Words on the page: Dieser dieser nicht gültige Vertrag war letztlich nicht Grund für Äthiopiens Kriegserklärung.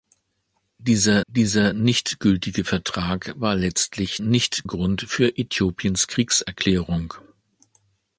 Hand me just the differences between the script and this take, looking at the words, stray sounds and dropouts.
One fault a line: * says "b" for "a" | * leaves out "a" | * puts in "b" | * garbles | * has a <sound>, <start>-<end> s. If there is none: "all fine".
all fine